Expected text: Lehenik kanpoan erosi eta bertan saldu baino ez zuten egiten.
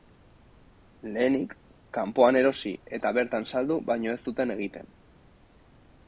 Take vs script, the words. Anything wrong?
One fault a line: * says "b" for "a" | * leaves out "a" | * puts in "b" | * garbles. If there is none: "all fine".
all fine